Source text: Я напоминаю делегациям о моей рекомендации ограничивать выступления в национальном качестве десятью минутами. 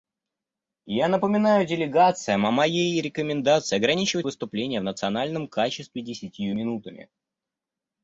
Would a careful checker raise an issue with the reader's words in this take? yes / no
no